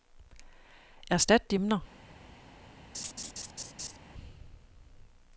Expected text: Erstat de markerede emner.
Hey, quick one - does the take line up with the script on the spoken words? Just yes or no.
no